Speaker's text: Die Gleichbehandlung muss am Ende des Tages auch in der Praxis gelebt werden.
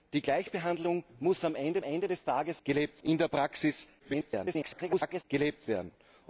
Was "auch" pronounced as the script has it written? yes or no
no